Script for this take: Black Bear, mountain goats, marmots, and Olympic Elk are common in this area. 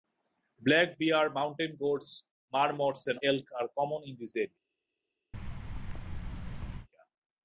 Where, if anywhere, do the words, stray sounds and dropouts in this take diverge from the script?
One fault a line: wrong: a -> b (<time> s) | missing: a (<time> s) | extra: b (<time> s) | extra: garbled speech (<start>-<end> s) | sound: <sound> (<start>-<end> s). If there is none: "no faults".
missing: Olympic (3.2 s)
sound: thud (5.3-6.9 s)